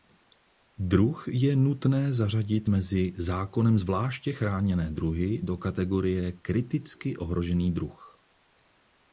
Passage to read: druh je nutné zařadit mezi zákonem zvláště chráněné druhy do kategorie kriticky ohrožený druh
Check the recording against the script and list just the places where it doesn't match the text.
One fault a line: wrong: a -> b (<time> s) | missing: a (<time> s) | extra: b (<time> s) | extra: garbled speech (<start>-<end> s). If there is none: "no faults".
no faults